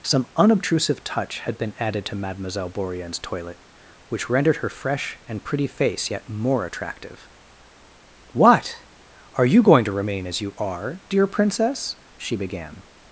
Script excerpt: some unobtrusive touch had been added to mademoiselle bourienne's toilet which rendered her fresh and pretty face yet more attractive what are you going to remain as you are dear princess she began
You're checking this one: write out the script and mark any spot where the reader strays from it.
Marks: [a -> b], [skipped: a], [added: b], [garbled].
some unobtrusive touch had been added to mademoiselle bourienne's toilet which rendered her fresh and pretty face yet more attractive what are you going to remain as you are dear princess she began